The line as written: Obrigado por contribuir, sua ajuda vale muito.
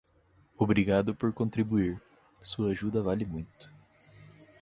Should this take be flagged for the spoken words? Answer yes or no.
no